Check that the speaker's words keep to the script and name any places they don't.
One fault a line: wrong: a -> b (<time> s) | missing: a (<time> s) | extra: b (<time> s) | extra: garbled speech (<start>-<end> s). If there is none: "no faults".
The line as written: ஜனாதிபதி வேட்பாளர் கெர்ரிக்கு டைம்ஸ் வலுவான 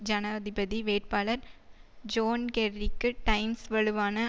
extra: ஜோன் (2.0 s)